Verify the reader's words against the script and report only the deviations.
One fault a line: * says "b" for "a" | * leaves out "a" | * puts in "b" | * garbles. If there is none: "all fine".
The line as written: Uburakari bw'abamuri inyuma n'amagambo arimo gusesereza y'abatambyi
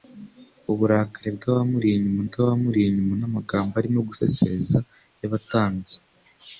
* puts in "bw'abamuri inyuma"